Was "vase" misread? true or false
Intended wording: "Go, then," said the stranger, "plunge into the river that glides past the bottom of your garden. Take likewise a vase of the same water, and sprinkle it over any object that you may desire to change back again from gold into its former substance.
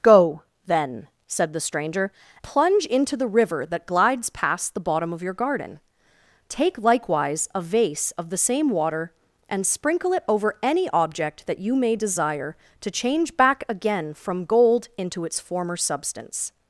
false